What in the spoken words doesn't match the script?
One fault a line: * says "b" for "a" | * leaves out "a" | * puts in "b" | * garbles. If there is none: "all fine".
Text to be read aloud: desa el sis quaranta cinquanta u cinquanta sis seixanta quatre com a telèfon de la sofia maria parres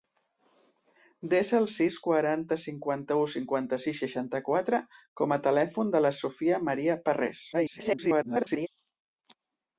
* garbles